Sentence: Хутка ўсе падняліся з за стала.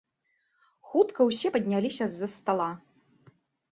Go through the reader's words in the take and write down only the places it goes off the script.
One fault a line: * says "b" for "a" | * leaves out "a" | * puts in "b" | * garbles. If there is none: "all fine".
all fine